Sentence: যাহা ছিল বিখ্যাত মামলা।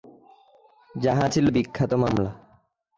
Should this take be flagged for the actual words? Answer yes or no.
no